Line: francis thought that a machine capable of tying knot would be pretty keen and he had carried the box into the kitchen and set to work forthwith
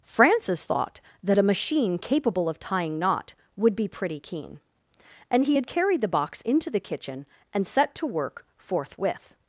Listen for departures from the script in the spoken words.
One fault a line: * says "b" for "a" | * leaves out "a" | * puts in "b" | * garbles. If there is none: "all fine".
all fine